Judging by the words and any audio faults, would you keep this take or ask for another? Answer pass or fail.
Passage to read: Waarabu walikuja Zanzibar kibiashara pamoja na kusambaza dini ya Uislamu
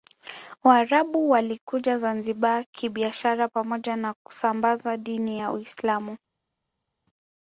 pass